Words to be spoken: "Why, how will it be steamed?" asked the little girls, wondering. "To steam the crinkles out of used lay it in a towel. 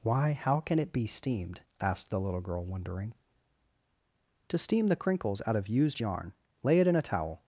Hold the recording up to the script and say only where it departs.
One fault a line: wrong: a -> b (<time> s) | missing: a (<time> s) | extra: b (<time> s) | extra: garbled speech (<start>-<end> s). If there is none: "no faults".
wrong: will -> can (0.6 s)
wrong: girls -> girl (2.4 s)
extra: yarn (6.0 s)